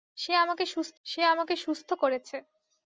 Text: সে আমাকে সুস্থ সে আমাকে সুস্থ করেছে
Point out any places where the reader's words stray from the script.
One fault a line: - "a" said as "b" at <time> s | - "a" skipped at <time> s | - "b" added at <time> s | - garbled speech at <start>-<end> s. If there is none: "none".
none